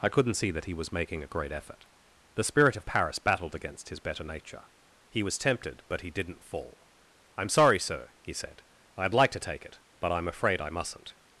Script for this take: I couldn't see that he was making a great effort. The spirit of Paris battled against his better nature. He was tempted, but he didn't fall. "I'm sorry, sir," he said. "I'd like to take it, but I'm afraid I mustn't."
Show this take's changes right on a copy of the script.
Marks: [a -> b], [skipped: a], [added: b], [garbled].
I couldn't see that he was making a great effort. The spirit of Paris battled against his better nature. He was tempted, but he didn't fall. "I'm sorry, sir," he said. "I'd like to take it, but I'm afraid I mustn't."